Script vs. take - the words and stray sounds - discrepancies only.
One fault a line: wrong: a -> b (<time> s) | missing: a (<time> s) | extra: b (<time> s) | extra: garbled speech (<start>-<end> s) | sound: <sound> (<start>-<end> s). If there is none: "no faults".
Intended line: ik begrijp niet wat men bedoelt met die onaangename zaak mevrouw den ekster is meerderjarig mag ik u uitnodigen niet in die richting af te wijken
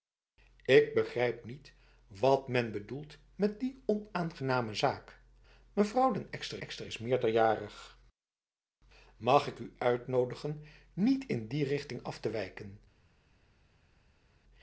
extra: ekster (6.6 s)